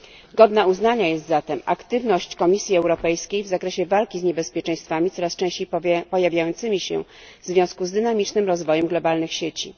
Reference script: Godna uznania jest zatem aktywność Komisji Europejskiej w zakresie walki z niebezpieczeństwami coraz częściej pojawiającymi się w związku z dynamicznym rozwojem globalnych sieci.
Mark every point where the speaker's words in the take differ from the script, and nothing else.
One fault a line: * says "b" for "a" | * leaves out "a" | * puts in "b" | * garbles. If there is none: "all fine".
all fine